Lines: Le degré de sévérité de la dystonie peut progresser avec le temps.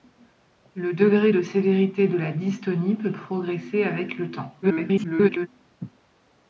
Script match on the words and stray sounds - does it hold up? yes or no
no